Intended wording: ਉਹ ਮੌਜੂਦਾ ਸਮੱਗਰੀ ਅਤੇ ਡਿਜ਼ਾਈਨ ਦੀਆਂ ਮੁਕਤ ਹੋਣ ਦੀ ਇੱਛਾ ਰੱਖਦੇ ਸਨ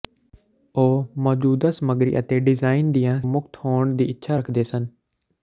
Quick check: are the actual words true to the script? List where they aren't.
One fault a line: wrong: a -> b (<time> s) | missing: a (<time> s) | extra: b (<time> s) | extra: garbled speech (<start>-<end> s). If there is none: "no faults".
no faults